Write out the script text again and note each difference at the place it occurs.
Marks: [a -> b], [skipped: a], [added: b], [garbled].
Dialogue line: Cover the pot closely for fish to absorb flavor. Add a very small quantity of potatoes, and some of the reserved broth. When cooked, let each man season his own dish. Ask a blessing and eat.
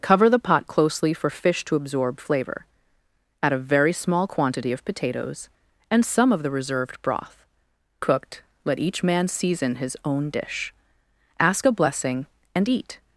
Cover the pot closely for fish to absorb flavor. Add a very small quantity of potatoes, and some of the reserved broth. [skipped: When] cooked, let each man season his own dish. Ask a blessing and eat.